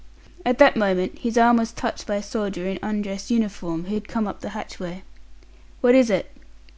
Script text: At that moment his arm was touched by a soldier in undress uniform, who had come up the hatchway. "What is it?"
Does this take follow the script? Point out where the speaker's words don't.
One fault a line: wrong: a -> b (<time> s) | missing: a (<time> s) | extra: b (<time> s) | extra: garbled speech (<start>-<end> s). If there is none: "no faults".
no faults